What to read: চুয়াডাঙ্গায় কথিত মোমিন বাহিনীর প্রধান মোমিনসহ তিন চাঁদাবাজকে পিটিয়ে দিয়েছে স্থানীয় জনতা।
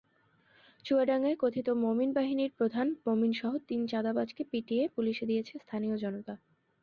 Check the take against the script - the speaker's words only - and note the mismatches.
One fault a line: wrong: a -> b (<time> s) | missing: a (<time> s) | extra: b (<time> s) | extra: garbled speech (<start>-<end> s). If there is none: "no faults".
extra: পুলিশে (4.9 s)